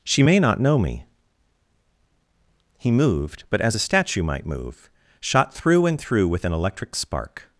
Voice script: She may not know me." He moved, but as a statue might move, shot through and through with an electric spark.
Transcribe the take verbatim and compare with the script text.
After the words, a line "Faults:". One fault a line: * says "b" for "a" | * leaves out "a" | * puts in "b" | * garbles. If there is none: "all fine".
She may not know me." He moved, but as a statue might move, shot through and through with an electric spark.
Faults:
all fine